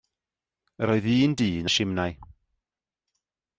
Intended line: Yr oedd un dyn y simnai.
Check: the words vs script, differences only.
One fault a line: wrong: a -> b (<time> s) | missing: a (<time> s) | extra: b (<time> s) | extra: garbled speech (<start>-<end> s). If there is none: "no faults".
no faults